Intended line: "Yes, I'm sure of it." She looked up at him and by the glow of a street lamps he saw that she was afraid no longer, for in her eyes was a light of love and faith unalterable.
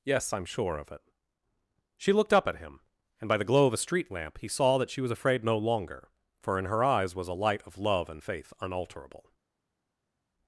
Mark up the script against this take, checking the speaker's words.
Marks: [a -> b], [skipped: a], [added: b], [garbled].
"Yes, I'm sure of it." She looked up at him and by the glow of a street [lamps -> lamp] he saw that she was afraid no longer, for in her eyes was a light of love and faith unalterable.